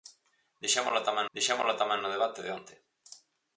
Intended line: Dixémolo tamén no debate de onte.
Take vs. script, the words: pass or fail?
fail